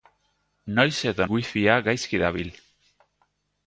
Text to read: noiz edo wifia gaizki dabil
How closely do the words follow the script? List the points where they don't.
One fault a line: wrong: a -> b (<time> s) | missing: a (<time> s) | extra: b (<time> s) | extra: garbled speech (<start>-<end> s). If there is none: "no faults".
no faults